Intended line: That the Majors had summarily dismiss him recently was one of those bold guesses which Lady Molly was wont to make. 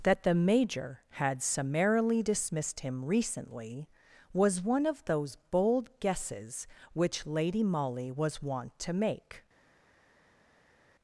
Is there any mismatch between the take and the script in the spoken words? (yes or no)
yes